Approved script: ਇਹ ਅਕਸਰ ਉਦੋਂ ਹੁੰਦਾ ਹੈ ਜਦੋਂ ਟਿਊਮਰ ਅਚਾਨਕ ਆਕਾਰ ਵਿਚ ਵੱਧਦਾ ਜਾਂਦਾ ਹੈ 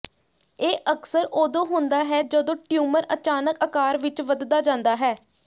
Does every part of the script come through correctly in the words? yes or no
yes